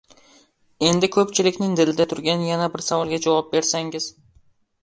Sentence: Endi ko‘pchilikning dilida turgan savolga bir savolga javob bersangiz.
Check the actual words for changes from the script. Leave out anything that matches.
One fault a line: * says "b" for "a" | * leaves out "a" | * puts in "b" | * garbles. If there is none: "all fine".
* says "yana" for "savolga"